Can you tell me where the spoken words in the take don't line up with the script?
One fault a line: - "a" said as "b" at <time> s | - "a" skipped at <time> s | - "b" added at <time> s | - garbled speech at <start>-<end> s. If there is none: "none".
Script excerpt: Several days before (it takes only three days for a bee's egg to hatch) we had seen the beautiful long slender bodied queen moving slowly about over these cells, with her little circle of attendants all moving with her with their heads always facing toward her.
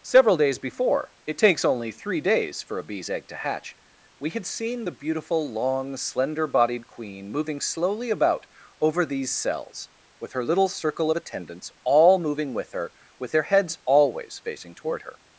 none